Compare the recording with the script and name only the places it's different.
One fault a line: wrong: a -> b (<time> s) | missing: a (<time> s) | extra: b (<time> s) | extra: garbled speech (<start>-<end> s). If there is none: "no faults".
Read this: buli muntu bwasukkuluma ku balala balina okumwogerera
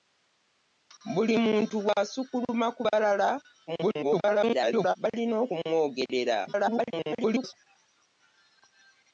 extra: garbled speech (3.7-5.0 s)
extra: garbled speech (6.5-7.5 s)